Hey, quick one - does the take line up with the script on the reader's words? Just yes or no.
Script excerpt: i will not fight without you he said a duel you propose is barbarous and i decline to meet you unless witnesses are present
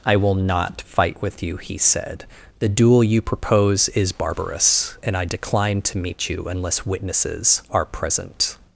no